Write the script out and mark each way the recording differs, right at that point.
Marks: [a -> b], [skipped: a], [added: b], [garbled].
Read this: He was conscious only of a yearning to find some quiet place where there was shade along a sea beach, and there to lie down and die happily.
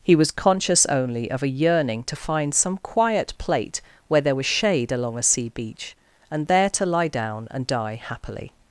He was conscious only of a yearning to find some quiet [place -> plate] where there was shade along a sea beach, and there to lie down and die happily.